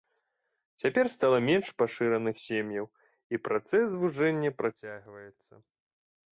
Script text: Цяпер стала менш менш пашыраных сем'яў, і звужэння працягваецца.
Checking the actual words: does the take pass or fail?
fail